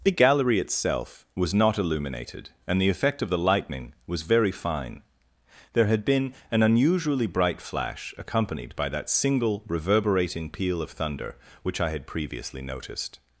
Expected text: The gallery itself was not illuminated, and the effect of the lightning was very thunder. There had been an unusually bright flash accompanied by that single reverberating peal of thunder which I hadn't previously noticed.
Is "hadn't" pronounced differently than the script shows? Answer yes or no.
yes